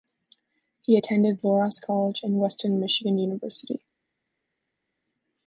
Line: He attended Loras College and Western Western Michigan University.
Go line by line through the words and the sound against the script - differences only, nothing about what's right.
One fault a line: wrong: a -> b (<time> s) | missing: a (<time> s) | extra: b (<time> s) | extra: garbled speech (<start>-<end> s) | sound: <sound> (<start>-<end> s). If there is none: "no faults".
missing: Western (2.8 s)